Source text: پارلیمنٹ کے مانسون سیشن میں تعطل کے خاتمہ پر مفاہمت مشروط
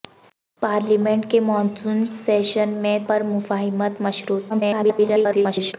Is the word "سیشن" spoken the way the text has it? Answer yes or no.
yes